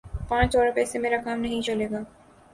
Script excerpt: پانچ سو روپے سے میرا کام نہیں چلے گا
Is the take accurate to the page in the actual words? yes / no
yes